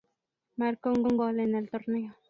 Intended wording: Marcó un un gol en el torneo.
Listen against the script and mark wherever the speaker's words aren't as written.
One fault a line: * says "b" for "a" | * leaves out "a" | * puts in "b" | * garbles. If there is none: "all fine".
all fine